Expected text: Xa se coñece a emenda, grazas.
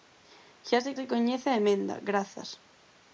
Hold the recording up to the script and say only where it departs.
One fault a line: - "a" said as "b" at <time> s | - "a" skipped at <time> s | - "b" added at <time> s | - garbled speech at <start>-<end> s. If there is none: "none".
- "se" added at 1.0 s